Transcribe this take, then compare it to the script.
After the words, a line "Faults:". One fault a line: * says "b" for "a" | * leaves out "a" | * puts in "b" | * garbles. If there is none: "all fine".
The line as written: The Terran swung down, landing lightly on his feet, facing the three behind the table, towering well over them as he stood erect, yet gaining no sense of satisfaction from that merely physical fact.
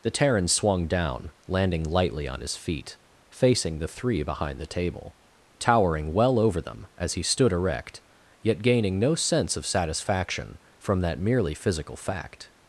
The Terran swung down, landing lightly on his feet, facing the three behind the table, towering well over them as he stood erect, yet gaining no sense of satisfaction from that merely physical fact.
Faults:
all fine